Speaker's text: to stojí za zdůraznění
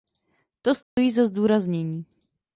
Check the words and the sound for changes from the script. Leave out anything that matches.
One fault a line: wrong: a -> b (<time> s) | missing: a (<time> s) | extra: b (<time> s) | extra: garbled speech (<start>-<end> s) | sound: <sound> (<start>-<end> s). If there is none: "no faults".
sound: dropout (0.8-1.0 s)